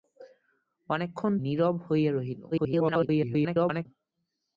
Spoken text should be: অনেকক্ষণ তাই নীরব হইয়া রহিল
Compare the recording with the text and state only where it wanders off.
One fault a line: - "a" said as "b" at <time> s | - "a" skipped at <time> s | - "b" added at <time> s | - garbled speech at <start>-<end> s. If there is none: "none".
- "তাই" skipped at 1.3 s
- garbled speech at 2.5-3.9 s